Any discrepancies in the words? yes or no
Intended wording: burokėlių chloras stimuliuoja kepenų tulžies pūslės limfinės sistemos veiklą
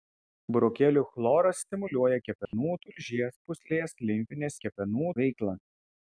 yes